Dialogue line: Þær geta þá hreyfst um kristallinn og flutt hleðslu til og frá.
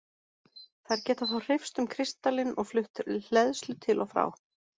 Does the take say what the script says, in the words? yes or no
yes